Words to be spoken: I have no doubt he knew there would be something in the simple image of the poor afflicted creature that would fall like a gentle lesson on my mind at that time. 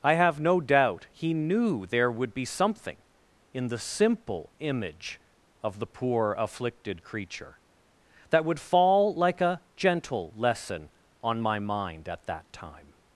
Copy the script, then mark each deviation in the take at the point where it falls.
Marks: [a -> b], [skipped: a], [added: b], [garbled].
I have no doubt he knew there would be something in the simple image of the poor afflicted creature that would fall like a gentle lesson on my mind at that time.